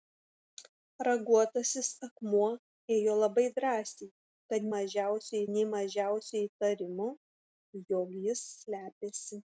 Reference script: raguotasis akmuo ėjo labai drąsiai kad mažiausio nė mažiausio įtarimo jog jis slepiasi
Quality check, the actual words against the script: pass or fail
pass